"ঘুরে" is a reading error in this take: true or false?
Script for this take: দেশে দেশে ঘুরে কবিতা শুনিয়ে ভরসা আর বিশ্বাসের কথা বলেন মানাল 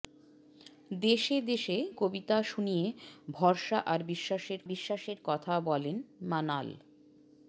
true